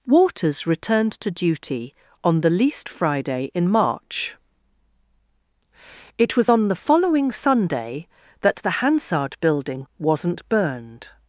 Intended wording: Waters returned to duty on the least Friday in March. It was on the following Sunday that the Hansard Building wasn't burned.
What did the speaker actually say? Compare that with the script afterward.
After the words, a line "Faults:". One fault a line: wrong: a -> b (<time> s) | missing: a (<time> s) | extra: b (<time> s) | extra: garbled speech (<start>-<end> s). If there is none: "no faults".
Waters returned to duty on the least Friday in March. It was on the following Sunday that the Hansard Building wasn't burned.
Faults:
no faults